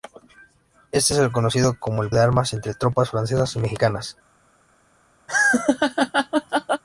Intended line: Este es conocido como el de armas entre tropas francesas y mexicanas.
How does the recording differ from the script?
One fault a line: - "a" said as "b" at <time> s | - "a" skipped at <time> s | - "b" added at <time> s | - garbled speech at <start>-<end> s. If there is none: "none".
none